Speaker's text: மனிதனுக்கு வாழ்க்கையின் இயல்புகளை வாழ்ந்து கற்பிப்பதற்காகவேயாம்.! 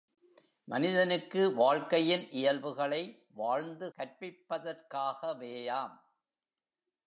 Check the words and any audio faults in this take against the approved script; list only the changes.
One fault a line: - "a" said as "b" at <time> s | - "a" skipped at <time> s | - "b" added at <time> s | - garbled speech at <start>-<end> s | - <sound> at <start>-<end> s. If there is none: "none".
none